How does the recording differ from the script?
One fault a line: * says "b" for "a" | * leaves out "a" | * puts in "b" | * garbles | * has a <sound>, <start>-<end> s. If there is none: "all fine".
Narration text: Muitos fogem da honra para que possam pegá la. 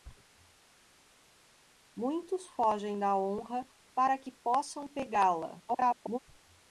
* garbles